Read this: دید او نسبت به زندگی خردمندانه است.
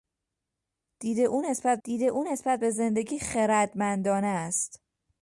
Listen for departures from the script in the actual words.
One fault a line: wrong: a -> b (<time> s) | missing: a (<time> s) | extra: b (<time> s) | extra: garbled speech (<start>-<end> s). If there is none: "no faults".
extra: دید او نسبت (1.8 s)